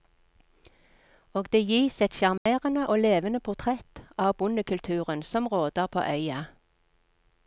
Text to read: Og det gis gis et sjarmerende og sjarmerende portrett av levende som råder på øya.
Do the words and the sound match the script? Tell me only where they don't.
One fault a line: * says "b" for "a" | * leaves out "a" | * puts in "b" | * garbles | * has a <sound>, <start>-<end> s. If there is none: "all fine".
* leaves out "gis"
* has a dropout, 2.4-2.5 s
* says "levende" for "sjarmerende"
* says "bondekulturen" for "levende"